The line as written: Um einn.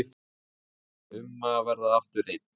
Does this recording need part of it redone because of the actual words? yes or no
yes